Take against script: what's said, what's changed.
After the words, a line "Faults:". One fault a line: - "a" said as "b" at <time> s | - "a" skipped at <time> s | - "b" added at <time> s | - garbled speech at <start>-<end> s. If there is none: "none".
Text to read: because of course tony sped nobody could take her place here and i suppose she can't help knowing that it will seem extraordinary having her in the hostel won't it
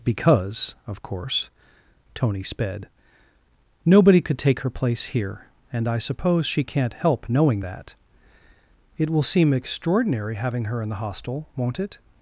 because of course tony sped nobody could take her place here and i suppose she can't help knowing that it will seem extraordinary having her in the hostel won't it
Faults:
none